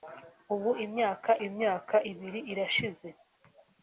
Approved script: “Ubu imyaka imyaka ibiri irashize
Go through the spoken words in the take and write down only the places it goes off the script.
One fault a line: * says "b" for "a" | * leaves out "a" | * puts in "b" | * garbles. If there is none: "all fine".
all fine